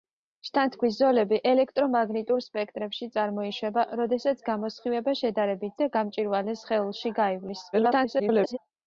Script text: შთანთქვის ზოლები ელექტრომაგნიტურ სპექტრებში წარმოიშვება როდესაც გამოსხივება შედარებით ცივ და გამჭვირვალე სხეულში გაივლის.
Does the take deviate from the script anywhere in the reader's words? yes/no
yes